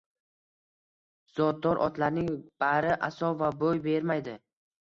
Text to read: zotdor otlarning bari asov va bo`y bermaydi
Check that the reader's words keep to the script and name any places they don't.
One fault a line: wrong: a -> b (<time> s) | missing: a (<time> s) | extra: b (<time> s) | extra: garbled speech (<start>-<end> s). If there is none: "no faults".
no faults